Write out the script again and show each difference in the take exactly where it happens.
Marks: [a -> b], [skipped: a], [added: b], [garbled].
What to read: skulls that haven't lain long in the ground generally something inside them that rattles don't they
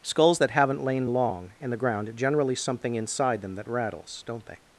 skulls that haven't lain long in the ground generally something inside them that rattles don't they